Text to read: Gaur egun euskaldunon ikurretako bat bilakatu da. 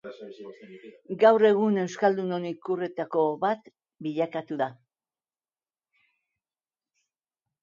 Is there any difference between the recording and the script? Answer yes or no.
no